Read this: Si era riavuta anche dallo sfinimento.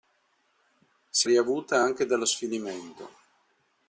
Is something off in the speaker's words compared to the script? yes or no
yes